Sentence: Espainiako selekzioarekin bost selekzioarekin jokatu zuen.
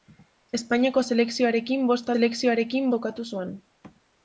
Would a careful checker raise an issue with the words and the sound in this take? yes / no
no